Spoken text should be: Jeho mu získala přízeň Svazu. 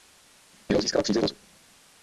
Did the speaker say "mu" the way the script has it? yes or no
yes